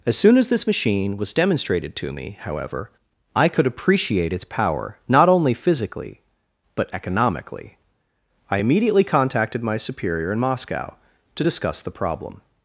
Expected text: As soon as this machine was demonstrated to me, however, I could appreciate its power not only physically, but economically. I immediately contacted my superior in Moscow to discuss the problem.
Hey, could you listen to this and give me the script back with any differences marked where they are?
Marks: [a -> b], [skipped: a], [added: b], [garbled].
As soon as this machine was demonstrated to me, however, I could appreciate its power not only physically, but economically. I immediately contacted my superior in Moscow to discuss the problem.